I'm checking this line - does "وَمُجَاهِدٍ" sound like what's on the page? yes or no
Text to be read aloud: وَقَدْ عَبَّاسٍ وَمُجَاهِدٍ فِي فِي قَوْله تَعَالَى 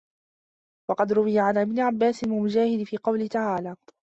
yes